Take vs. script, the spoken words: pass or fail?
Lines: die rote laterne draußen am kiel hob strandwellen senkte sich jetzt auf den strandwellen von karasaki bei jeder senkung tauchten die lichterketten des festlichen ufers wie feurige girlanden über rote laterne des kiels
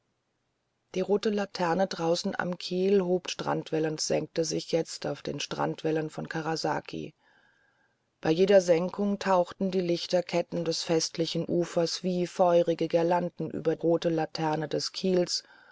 pass